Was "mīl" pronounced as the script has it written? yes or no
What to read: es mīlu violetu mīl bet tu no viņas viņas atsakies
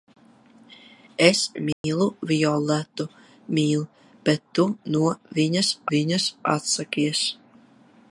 yes